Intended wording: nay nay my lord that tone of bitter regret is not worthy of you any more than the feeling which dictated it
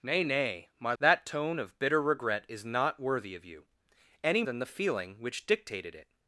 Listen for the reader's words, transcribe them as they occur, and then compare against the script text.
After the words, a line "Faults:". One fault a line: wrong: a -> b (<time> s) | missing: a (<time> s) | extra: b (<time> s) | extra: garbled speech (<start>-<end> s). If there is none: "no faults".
nay nay my that tone of bitter regret is not worthy of you any than the feeling which dictated it
Faults:
missing: lord (0.9 s)
missing: more (4.4 s)